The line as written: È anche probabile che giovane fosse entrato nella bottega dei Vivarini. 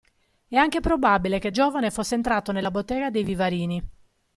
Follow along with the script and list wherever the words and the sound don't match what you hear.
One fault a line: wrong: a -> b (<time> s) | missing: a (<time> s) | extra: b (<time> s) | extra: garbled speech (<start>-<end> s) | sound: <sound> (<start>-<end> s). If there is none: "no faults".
no faults